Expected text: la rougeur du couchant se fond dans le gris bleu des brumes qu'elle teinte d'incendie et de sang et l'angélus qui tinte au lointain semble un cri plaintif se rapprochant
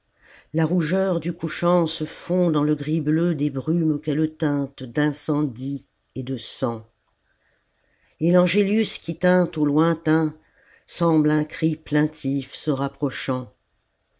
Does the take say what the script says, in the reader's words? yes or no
yes